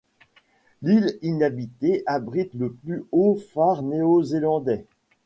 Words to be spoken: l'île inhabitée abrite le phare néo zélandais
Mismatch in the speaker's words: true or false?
true